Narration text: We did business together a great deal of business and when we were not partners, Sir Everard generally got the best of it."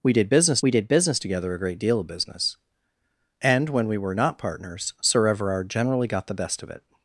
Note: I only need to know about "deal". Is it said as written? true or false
true